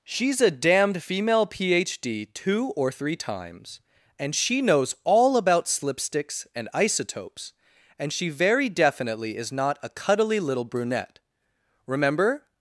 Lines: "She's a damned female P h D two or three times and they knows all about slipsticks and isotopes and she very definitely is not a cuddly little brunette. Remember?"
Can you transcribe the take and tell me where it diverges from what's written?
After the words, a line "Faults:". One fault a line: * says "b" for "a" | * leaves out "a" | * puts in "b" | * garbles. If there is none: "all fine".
"She's a damned female P h D two or three times and she knows all about slipsticks and isotopes and she very definitely is not a cuddly little brunette. Remember?"
Faults:
* says "she" for "they"